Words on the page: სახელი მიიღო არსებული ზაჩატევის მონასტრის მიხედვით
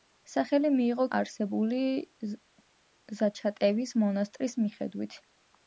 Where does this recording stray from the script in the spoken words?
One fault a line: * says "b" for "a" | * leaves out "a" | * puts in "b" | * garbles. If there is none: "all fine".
all fine